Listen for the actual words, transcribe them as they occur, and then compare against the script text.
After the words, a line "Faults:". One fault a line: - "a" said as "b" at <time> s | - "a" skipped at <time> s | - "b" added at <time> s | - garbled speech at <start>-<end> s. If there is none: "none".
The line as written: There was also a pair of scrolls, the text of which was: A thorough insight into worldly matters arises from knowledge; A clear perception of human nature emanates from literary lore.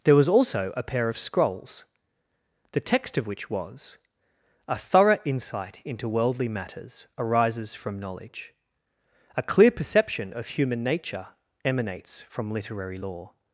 There was also a pair of scrolls, the text of which was: A thorough insight into worldly matters arises from knowledge; A clear perception of human nature emanates from literary lore.
Faults:
none